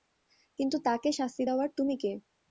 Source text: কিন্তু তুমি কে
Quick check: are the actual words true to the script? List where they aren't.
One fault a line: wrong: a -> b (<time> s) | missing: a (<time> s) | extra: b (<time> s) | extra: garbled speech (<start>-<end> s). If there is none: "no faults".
extra: তাকে শাস্তি দেওয়ার (0.9 s)